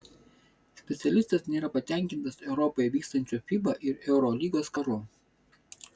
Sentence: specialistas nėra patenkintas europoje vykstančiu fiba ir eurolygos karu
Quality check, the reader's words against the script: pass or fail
pass